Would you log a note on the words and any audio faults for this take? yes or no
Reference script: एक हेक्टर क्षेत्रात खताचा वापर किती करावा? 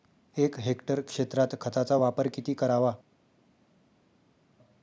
no